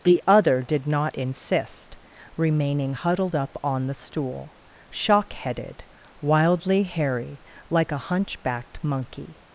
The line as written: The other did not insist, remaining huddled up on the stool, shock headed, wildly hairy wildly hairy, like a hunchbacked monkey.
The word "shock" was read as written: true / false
true